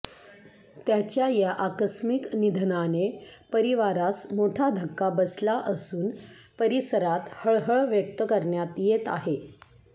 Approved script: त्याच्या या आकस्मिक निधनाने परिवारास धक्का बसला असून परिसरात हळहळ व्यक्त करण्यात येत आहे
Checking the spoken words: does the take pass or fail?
fail